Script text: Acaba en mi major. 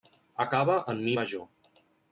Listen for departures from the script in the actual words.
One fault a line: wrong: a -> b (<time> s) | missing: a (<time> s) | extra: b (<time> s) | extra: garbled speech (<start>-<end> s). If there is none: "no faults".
no faults